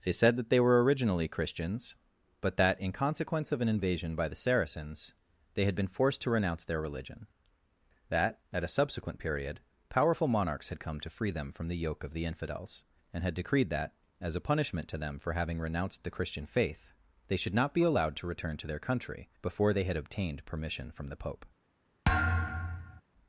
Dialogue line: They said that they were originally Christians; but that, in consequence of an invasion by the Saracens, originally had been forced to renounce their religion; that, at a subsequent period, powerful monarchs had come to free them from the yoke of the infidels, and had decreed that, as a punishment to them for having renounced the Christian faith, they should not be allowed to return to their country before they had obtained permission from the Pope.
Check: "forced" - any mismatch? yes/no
no